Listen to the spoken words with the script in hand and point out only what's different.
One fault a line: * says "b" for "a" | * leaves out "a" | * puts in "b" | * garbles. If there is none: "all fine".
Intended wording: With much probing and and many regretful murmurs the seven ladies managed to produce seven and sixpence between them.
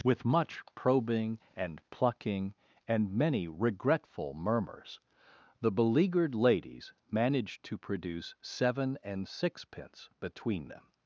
* puts in "plucking"
* says "beleaguered" for "seven"